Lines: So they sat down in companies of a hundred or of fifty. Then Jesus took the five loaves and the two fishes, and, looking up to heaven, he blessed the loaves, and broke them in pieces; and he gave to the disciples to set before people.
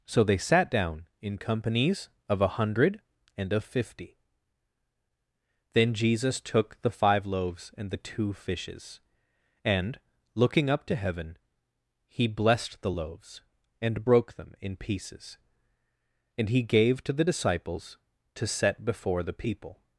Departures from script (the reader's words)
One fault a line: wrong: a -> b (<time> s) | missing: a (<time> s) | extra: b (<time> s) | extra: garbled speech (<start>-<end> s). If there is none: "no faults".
wrong: or -> and (3.4 s)
extra: the (19.2 s)